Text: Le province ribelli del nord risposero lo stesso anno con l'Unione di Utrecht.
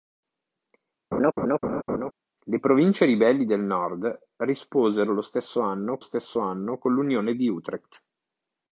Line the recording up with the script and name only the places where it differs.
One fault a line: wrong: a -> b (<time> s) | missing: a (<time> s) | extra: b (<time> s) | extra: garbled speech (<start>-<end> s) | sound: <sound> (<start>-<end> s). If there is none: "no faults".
sound: laugh (1.1-2.1 s)
extra: stesso anno (6.0 s)